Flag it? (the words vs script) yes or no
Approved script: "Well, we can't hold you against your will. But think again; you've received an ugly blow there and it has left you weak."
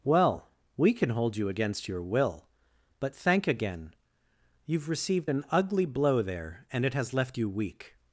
yes